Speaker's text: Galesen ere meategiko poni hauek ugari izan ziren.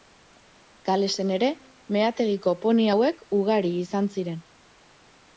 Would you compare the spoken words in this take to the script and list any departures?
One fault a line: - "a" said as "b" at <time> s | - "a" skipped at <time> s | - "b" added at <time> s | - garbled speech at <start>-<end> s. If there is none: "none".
none